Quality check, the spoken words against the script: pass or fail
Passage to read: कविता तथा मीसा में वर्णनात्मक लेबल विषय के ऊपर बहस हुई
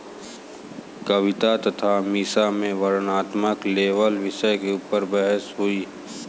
pass